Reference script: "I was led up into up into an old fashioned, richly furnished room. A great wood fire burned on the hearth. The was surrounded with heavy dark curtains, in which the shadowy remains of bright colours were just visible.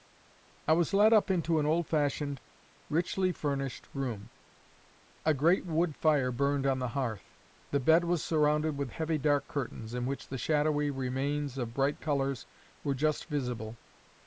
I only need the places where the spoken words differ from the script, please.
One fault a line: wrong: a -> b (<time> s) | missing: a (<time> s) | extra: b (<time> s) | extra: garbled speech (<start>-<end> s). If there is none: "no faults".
missing: up into (1.6 s)
extra: bed (7.8 s)